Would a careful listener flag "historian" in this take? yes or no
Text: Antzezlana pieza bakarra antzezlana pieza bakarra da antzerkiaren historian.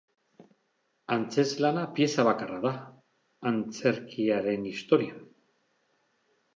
no